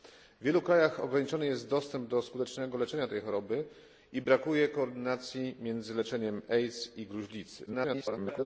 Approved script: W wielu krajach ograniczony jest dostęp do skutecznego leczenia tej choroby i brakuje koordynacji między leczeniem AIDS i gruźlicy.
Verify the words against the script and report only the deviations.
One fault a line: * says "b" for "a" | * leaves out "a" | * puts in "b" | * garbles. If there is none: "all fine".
* garbles